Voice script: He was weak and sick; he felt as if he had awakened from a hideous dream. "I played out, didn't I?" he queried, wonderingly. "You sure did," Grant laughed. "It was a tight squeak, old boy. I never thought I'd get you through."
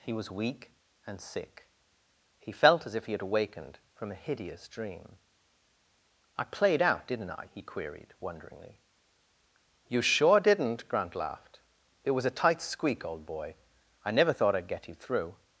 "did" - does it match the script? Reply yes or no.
no